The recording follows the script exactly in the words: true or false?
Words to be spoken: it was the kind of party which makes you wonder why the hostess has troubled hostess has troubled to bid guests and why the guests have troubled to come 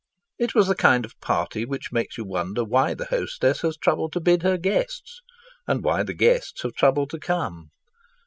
false